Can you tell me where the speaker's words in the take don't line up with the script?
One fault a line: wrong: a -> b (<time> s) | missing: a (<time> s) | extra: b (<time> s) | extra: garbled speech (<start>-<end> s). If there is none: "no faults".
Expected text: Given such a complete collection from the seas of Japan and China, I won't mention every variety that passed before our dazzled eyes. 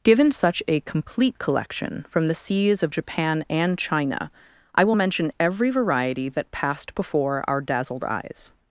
wrong: won't -> will (4.8 s)